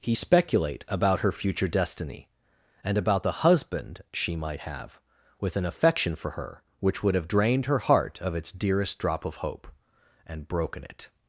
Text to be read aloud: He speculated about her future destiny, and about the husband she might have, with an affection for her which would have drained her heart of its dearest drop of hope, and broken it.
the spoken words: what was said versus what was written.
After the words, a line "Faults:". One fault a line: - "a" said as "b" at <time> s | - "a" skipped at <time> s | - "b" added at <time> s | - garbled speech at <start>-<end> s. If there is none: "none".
He speculate about her future destiny, and about the husband she might have, with an affection for her which would have drained her heart of its dearest drop of hope, and broken it.
Faults:
- "speculated" said as "speculate" at 0.1 s